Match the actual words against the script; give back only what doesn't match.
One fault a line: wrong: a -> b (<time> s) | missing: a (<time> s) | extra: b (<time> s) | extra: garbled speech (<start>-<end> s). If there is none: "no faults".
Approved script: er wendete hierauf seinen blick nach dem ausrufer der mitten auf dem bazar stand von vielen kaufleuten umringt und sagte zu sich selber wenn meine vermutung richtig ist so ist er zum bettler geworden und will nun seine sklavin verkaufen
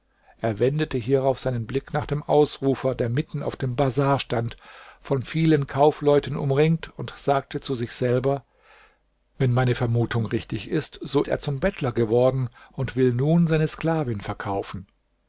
missing: ist (11.2 s)